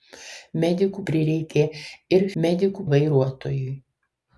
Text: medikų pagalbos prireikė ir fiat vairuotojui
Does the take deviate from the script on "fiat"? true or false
true